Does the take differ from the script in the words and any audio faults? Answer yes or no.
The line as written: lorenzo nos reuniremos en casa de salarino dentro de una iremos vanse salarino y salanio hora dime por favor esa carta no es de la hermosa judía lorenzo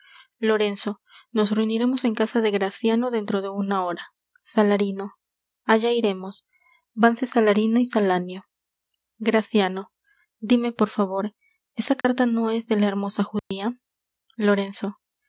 yes